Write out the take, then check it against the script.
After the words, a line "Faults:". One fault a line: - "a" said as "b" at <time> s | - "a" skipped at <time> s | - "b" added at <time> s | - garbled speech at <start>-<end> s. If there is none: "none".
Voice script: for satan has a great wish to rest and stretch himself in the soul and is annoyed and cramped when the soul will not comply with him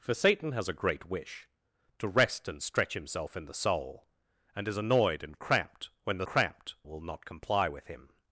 for satan has a great wish to rest and stretch himself in the soul and is annoyed and cramped when the cramped will not comply with him
Faults:
- "soul" said as "cramped" at 6.2 s